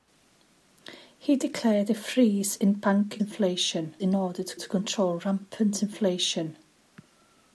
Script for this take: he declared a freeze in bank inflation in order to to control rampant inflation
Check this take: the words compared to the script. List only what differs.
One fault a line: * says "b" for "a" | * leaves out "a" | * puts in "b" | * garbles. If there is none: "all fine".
all fine